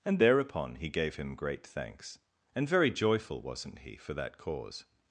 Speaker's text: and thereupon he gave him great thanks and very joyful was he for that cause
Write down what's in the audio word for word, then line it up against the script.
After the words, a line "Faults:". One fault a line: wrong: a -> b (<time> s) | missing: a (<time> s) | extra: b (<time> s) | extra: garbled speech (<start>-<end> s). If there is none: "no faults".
and thereupon he gave him great thanks and very joyful wasn't he for that cause
Faults:
wrong: was -> wasn't (3.4 s)